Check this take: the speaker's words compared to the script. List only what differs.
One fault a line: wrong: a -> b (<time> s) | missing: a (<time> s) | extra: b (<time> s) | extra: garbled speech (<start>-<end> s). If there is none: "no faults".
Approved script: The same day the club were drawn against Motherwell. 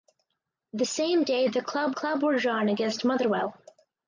extra: club (1.9 s)